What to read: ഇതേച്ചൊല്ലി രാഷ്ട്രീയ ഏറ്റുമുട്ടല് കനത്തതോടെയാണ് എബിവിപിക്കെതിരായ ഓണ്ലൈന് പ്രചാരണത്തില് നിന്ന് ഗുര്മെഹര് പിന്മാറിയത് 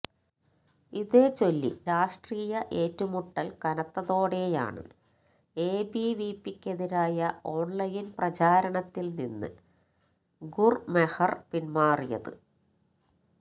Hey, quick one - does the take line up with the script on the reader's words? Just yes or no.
yes